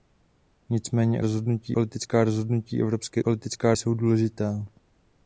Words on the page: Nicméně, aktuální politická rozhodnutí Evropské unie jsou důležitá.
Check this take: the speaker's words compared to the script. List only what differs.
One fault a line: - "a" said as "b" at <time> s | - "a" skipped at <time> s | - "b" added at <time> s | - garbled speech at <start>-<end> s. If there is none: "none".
- "aktuální" said as "rozhodnutí" at 1.2 s
- "unie" said as "politická" at 3.2 s